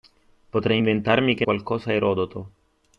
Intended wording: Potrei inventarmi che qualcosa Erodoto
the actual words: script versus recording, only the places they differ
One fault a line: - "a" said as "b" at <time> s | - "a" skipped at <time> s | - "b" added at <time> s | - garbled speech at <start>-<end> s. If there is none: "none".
none